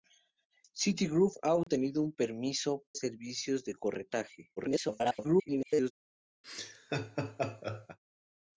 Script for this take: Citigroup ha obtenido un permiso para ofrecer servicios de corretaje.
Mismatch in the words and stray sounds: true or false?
true